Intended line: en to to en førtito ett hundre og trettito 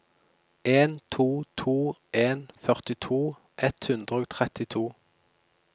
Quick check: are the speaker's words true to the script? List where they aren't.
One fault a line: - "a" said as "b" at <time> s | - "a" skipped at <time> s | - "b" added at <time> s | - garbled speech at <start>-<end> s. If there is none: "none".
none